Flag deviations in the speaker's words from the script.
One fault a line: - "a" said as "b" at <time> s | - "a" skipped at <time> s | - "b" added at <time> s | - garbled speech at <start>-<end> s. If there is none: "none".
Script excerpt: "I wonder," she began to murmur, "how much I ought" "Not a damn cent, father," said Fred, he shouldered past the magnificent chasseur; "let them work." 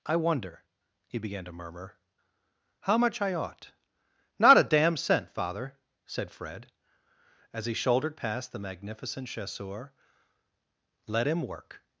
- "she" said as "he" at 1.1 s
- "as" added at 7.5 s
- "them" said as "him" at 11.3 s